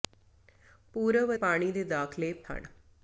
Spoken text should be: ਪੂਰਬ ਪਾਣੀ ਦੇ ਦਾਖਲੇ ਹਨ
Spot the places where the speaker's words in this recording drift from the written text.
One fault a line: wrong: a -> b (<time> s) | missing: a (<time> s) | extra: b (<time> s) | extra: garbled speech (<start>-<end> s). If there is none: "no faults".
no faults